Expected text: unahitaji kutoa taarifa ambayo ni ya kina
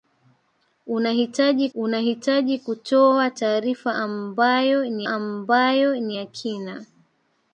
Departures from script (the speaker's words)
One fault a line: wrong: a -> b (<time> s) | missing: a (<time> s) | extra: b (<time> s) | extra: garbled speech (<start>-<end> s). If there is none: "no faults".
extra: unahitaji (1.7 s)
extra: ambayo ni (5.1 s)